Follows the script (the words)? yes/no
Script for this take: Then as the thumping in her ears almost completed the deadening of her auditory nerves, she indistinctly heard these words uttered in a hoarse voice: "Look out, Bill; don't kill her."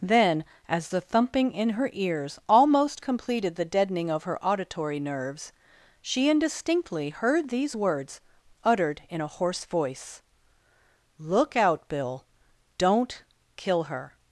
yes